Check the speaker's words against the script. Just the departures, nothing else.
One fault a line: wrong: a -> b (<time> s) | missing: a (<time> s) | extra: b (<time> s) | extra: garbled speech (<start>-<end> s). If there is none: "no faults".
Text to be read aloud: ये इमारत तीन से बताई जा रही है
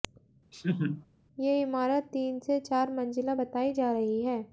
extra: चार मंजिला (2.6 s)